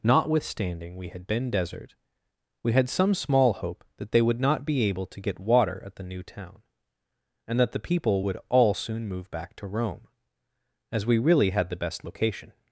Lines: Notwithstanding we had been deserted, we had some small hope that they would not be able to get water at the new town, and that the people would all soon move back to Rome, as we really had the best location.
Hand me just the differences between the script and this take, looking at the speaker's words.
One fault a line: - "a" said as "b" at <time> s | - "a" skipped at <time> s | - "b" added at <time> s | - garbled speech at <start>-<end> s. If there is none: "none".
- "deserted" said as "desert" at 1.5 s